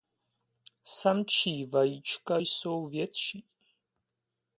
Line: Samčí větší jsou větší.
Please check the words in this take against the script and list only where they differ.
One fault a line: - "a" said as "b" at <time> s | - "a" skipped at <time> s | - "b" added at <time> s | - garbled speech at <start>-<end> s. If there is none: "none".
- "větší" said as "vajíčka" at 1.6 s